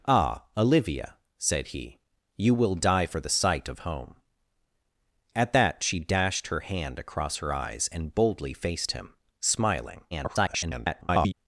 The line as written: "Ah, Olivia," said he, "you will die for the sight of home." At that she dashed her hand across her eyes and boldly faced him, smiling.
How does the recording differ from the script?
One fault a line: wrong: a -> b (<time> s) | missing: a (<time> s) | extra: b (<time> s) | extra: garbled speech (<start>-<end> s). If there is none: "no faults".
extra: garbled speech (10.1-11.3 s)